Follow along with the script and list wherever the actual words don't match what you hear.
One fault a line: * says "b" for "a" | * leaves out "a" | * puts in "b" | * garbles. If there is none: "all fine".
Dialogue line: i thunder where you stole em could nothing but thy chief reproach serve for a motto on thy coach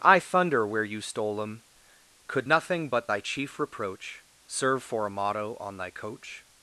all fine